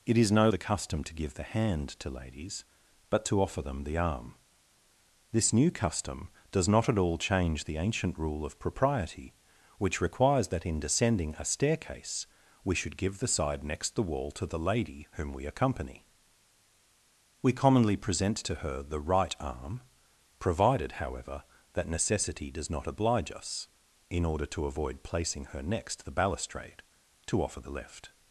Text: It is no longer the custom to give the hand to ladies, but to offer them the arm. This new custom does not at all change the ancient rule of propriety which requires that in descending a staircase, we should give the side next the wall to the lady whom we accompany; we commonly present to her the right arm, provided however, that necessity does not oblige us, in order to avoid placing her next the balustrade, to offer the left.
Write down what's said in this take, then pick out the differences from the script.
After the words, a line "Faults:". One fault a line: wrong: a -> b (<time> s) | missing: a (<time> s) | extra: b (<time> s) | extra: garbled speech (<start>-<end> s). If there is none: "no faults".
It is no the custom to give the hand to ladies, but to offer them the arm. This new custom does not at all change the ancient rule of propriety which requires that in descending a staircase, we should give the side next the wall to the lady whom we accompany; we commonly present to her the right arm, provided however, that necessity does not oblige us, in order to avoid placing her next the balustrade, to offer the left.
Faults:
missing: longer (0.5 s)